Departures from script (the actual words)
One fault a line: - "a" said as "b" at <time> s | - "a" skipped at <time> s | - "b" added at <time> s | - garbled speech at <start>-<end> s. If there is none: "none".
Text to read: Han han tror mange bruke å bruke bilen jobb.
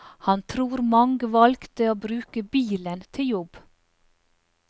- "han" skipped at 0.4 s
- "bruke" said as "valgte" at 1.3 s
- "til" added at 3.2 s